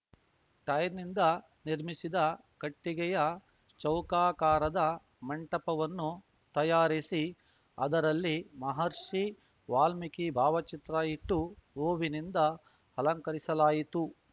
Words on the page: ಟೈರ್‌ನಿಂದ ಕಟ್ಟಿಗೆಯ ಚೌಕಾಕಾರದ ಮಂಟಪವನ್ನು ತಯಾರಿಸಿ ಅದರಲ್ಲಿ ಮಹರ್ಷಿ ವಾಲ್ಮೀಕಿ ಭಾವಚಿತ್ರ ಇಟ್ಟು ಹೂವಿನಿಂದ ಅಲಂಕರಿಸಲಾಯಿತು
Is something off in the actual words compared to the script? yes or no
yes